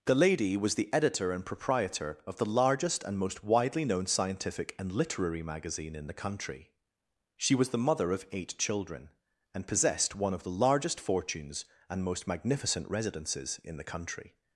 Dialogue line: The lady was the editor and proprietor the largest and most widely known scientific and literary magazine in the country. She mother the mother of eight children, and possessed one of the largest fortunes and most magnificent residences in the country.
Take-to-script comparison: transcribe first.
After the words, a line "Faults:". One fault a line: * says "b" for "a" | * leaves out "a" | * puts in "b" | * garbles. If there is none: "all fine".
The lady was the editor and proprietor of the largest and most widely known scientific and literary magazine in the country. She was the mother of eight children, and possessed one of the largest fortunes and most magnificent residences in the country.
Faults:
* puts in "of"
* says "was" for "mother"